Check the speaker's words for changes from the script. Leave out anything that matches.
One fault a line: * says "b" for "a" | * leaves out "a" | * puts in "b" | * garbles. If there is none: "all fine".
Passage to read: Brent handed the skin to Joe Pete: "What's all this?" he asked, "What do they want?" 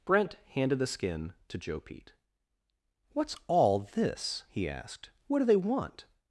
all fine